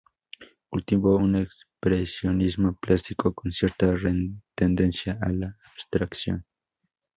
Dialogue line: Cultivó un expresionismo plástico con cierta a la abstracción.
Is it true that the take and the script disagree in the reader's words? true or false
true